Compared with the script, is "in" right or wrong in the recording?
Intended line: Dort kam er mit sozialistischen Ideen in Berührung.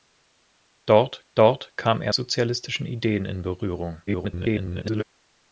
right